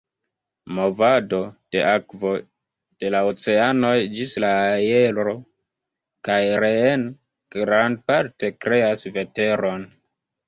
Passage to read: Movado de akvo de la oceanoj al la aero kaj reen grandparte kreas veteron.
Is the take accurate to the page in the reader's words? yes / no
no